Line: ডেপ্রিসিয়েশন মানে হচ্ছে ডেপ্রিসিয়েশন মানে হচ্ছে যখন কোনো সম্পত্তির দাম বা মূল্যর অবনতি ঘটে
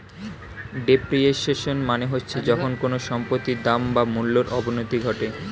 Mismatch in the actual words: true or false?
true